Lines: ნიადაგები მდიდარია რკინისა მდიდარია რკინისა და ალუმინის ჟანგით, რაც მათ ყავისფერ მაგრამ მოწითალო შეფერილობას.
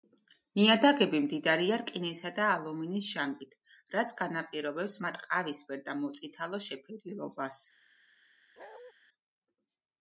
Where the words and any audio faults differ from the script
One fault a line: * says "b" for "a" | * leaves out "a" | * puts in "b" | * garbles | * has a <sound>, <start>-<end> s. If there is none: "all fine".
* leaves out "მდიდარია რკინისა"
* puts in "განაპირობებს"
* says "და" for "მაგრამ"
* has a bark, 8.6-8.9 s